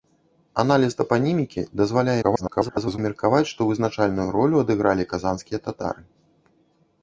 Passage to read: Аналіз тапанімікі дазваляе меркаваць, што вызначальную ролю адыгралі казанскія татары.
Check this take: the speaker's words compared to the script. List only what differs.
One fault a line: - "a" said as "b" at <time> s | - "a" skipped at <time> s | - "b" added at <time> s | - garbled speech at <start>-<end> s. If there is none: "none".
- garbled speech at 2.2-3.0 s